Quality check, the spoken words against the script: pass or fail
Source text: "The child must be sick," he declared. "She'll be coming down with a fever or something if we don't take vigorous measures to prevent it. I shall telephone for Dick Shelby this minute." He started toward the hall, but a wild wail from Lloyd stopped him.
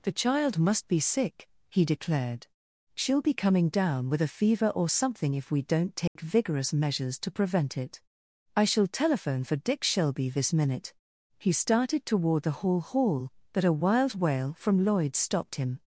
fail